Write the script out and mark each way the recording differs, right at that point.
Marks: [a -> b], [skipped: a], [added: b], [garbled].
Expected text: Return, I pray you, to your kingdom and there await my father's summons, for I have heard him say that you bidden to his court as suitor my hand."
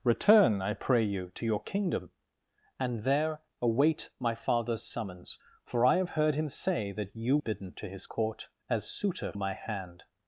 Return, I pray you, to your kingdom and there await my father's summons, for I have heard him say that you bidden to his court as suitor my hand."